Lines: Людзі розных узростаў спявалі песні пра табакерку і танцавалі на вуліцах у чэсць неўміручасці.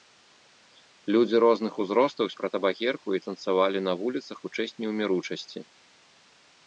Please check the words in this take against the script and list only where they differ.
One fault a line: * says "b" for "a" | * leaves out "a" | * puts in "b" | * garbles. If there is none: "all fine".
* leaves out "спявалі песні"